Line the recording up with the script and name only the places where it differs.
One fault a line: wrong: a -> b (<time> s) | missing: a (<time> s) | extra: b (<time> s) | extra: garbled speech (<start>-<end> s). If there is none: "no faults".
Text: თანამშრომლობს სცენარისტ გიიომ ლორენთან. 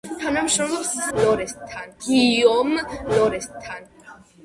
wrong: სცენარისტ -> ლორენთან (1.2 s)